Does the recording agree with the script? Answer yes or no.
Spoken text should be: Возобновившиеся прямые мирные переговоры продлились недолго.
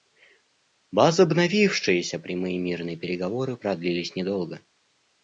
yes